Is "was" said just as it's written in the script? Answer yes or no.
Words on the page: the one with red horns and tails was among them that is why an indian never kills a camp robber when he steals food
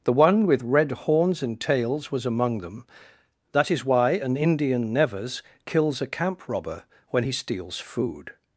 yes